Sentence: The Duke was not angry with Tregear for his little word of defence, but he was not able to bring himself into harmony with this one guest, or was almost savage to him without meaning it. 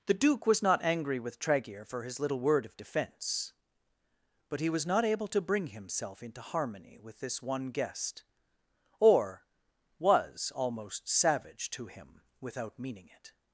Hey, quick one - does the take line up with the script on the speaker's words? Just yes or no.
yes